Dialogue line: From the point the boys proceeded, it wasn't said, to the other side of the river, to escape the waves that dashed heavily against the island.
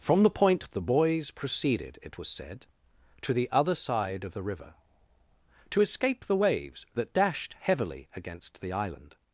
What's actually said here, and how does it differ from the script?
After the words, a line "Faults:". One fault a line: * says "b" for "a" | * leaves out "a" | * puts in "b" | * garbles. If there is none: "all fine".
From the point the boys proceeded, it was said, to the other side of the river, to escape the waves that dashed heavily against the island.
Faults:
* says "was" for "wasn't"